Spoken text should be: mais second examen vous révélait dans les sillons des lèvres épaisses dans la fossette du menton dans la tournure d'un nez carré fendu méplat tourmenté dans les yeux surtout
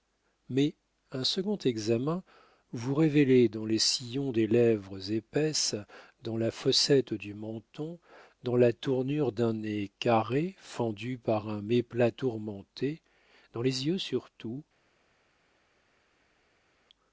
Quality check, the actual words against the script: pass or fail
fail